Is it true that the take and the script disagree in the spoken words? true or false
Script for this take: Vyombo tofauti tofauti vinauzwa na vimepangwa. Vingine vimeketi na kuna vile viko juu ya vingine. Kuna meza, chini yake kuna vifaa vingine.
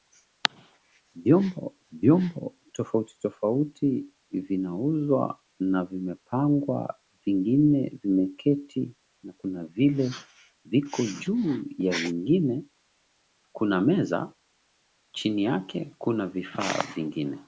true